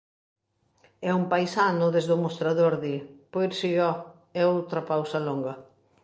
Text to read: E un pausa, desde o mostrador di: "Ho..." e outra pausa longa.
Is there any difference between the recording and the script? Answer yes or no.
yes